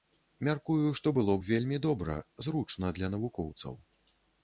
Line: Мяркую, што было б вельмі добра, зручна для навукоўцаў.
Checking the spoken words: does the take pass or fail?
pass